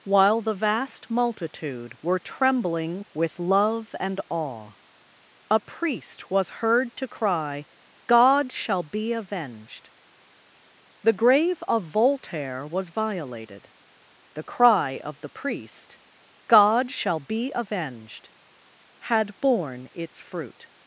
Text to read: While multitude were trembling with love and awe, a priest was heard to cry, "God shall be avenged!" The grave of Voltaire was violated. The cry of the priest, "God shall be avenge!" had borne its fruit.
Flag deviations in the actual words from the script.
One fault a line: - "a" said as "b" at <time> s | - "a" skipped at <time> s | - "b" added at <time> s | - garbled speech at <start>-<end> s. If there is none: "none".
- "the vast" added at 0.4 s
- "avenge" said as "avenged" at 17.6 s